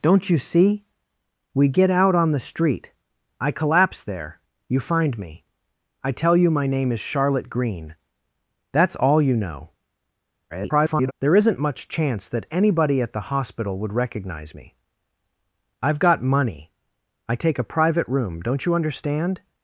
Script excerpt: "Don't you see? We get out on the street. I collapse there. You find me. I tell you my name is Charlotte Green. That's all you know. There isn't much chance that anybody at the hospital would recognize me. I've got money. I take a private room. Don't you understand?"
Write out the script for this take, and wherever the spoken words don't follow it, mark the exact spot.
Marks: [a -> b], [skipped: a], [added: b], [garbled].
"Don't you see? We get out on the street. I collapse there. You find me. I tell you my name is Charlotte Green. That's all you know. [garbled] There isn't much chance that anybody at the hospital would recognize me. I've got money. I take a private room. Don't you understand?"